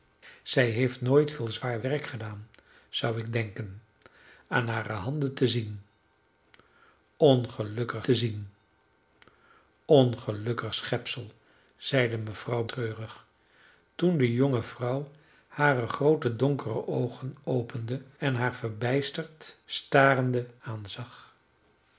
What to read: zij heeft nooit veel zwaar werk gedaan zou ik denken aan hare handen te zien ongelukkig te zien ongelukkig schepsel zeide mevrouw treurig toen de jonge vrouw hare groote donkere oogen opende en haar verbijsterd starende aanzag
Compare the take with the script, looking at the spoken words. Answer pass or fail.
pass